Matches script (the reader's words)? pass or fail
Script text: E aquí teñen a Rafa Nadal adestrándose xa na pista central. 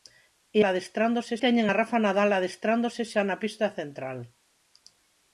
fail